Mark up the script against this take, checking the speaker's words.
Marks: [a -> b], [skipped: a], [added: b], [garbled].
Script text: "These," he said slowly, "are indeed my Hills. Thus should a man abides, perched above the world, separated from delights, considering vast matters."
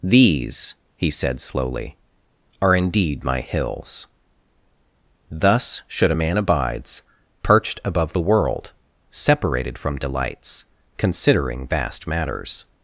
"These," he said slowly, "are indeed my Hills. Thus should a man abides, perched above the world, separated from delights, considering vast matters."